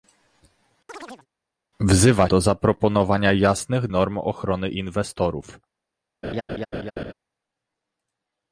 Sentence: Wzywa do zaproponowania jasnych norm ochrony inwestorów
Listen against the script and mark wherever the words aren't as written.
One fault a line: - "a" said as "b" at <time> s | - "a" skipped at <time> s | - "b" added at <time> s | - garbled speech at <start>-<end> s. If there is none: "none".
none